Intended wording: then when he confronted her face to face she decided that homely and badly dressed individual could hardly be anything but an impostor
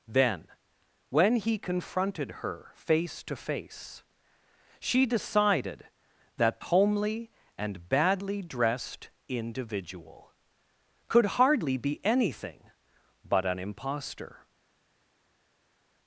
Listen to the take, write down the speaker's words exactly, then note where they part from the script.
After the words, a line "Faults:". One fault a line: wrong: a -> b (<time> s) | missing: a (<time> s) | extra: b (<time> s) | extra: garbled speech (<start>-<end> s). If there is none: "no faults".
then when he confronted her face to face she decided that homely and badly dressed individual could hardly be anything but an impostor
Faults:
no faults